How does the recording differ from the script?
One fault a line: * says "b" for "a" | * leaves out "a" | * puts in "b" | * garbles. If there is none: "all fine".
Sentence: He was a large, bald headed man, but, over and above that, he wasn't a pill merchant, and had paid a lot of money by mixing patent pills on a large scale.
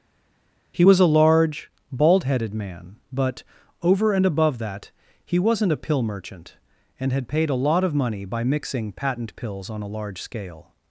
all fine